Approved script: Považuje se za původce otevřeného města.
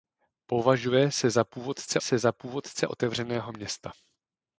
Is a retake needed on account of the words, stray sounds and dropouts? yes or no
yes